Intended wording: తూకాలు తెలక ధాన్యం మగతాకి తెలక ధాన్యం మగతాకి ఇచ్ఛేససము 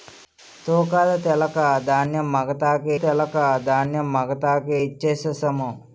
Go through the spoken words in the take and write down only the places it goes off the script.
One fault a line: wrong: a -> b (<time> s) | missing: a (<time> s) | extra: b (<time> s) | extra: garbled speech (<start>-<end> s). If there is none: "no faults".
no faults